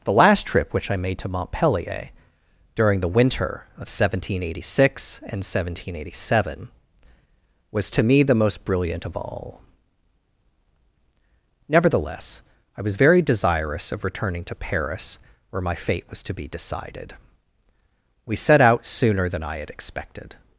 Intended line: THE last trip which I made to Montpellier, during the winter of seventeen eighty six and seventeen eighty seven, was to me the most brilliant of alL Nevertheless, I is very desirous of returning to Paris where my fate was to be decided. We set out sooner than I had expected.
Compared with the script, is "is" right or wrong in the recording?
wrong